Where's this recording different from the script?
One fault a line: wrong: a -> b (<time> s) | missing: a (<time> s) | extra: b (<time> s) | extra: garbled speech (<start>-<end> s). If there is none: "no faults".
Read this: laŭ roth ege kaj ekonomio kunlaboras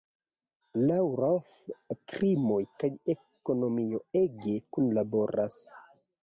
wrong: ege -> krimoj (2.1 s)
extra: ege (4.2 s)